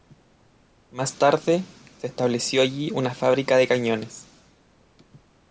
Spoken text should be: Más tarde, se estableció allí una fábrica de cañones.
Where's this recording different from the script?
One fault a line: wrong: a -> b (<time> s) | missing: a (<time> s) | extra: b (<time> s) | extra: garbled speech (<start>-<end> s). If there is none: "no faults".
no faults